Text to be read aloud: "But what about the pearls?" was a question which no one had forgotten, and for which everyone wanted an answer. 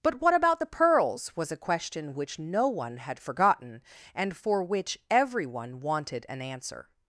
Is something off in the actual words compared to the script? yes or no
no